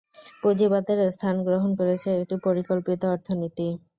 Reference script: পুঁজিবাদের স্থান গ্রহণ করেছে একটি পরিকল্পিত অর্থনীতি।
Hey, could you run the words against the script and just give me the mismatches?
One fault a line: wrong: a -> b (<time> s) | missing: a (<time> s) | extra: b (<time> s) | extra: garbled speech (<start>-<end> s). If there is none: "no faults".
no faults